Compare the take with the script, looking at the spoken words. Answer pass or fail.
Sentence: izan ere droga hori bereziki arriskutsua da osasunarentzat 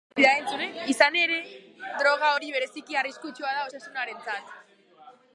pass